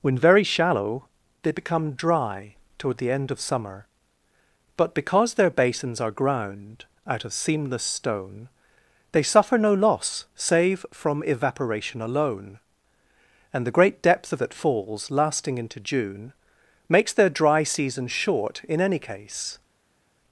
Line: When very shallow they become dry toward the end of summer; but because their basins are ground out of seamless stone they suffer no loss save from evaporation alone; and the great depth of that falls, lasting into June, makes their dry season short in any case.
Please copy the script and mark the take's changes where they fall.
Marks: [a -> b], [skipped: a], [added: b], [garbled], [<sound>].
When very shallow they become dry toward the end of summer; but because their basins are ground out of seamless stone they suffer no loss save from evaporation alone; and the great depth of that falls, lasting into June, makes their dry season short in any case.